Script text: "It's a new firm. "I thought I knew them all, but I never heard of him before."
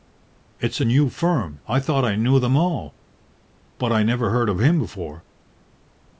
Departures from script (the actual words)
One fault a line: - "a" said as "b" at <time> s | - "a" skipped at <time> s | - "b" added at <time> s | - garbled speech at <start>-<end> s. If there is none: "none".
none